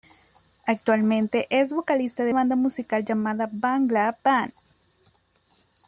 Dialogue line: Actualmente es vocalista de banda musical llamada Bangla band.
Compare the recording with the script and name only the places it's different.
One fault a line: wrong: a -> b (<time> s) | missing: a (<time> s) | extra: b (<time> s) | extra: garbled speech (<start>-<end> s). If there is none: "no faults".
no faults